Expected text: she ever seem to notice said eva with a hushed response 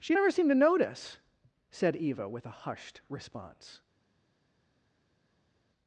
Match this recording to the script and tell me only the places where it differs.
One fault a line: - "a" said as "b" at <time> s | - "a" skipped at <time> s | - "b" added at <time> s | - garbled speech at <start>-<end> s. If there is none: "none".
none